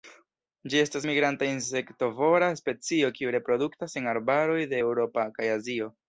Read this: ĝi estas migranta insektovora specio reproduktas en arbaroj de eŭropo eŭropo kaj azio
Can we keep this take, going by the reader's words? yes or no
no